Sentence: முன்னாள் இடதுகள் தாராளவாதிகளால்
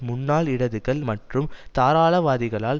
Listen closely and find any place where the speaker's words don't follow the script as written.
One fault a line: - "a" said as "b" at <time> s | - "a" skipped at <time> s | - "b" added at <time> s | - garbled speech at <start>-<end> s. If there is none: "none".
- "மற்றும்" added at 1.0 s